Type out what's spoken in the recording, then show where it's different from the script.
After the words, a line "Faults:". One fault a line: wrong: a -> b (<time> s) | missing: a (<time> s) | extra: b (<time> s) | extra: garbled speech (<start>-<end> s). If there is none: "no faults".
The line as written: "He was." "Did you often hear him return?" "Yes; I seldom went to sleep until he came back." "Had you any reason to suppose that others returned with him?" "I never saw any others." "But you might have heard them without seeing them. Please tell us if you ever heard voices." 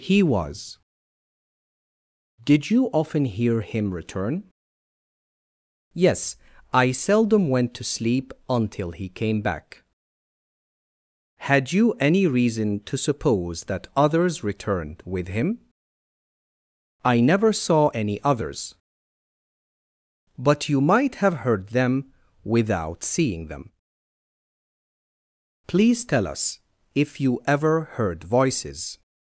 "He was." "Did you often hear him return?" "Yes; I seldom went to sleep until he came back." "Had you any reason to suppose that others returned with him?" "I never saw any others." "But you might have heard them without seeing them. Please tell us if you ever heard voices."
Faults:
no faults